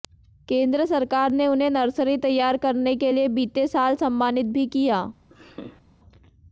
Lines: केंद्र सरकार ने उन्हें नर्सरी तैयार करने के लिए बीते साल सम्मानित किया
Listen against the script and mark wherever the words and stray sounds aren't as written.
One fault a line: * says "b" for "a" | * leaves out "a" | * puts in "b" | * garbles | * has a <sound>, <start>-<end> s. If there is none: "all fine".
* puts in "भी"
* has a laugh, 5.3-5.8 s